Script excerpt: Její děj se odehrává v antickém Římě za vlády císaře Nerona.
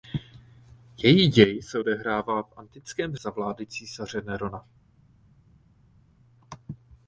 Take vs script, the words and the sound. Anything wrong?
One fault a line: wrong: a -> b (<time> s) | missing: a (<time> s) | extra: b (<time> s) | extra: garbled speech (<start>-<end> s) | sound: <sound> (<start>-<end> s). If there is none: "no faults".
missing: Římě (3.1 s)